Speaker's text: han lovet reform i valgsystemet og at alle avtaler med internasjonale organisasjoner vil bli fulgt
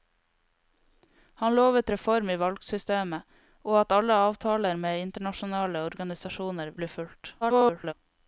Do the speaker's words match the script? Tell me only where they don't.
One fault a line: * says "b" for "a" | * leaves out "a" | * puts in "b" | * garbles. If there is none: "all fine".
* leaves out "vil"
* garbles